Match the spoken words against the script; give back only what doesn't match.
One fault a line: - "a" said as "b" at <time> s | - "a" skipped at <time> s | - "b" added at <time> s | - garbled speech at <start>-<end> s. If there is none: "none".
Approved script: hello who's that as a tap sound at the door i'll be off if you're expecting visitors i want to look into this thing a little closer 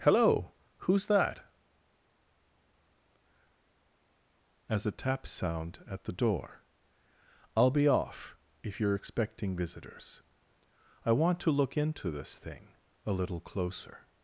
none